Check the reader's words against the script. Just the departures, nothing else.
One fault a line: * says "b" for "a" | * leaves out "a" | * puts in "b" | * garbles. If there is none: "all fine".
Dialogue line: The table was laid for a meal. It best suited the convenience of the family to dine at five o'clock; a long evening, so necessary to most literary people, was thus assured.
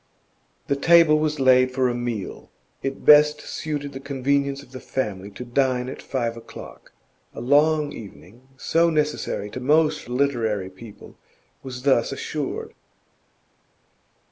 all fine